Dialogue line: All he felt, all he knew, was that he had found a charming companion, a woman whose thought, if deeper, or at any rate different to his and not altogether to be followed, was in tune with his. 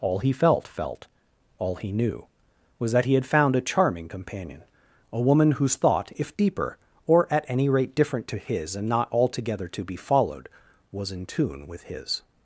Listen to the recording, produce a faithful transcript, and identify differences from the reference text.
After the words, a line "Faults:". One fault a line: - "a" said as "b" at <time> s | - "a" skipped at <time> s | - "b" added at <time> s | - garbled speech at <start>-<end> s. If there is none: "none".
All he felt felt, all he knew, was that he had found a charming companion, a woman whose thought, if deeper, or at any rate different to his and not altogether to be followed, was in tune with his.
Faults:
- "felt" added at 0.7 s